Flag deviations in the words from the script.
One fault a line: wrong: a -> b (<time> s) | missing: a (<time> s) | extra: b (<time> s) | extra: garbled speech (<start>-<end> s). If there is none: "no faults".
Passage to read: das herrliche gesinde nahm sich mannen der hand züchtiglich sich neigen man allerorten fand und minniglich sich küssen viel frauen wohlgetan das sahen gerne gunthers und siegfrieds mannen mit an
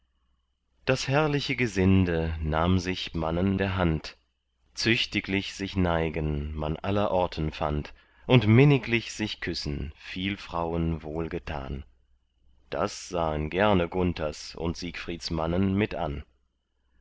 no faults